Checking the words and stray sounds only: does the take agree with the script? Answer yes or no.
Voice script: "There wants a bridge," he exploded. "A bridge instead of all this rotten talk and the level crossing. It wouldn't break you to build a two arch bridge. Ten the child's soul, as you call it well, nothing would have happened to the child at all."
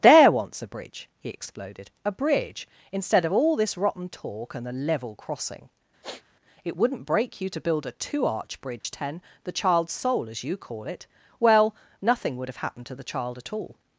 no